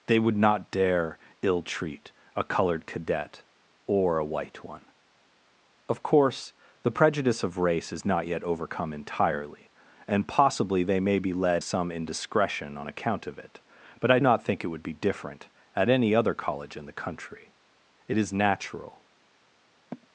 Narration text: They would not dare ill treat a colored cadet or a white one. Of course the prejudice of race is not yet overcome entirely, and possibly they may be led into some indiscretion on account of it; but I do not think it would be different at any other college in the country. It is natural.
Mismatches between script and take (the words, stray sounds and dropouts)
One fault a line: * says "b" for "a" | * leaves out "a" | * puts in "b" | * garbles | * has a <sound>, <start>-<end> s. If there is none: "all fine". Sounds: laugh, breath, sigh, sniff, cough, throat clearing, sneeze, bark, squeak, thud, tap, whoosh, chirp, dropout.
* leaves out "into"
* leaves out "do"
* has a sigh, 19.9-20.1 s